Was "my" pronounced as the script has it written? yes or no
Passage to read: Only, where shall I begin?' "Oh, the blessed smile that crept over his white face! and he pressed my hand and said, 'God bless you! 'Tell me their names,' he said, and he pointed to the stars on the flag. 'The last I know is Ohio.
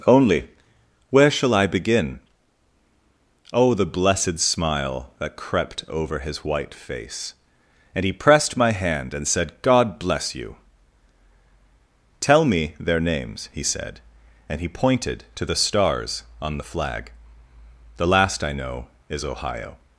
yes